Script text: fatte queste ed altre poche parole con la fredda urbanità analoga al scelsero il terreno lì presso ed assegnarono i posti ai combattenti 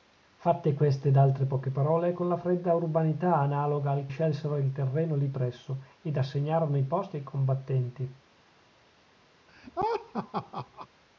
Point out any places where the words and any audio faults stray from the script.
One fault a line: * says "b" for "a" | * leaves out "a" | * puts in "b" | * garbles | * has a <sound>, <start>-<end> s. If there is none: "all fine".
* has a laugh, 9.5-10.9 s